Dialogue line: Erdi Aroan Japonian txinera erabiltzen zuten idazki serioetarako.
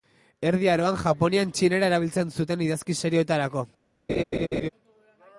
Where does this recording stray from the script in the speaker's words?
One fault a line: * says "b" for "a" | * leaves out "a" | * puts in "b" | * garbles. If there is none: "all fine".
all fine